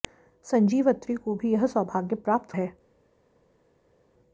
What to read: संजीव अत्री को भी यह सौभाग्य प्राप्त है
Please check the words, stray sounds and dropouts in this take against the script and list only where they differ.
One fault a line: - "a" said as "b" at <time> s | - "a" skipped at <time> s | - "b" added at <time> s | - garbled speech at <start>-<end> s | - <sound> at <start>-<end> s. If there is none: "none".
none